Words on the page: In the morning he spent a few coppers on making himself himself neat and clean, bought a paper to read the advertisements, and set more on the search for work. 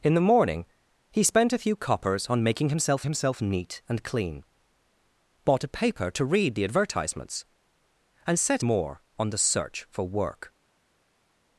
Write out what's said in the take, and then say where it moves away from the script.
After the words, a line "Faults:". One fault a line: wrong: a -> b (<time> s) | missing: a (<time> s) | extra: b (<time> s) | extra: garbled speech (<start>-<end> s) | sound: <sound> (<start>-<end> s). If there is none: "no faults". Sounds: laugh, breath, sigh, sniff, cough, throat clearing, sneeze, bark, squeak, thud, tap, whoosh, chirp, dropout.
In the morning he spent a few coppers on making himself himself neat and clean, bought a paper to read the advertisements, and set more on the search for work.
Faults:
no faults